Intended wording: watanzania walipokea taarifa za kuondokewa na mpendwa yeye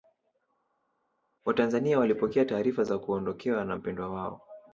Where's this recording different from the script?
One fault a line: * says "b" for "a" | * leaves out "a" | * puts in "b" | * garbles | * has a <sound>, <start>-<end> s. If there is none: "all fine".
* says "wao" for "yeye"